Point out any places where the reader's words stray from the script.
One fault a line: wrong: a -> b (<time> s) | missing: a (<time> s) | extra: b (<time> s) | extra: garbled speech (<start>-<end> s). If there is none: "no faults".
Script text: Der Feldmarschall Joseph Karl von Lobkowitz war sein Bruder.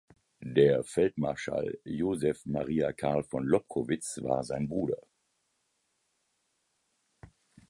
extra: Maria (2.4 s)